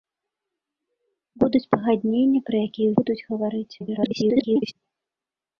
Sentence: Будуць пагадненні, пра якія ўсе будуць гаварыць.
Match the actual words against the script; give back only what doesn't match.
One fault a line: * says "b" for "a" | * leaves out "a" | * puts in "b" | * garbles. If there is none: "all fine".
* leaves out "ўсе"
* garbles